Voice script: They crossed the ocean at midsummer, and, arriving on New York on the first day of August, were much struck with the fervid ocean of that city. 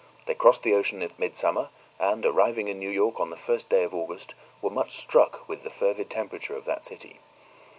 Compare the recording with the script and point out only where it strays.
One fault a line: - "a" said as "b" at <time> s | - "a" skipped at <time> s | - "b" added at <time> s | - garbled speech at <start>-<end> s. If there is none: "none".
- "on" said as "in" at 2.7 s
- "ocean" said as "temperature" at 6.1 s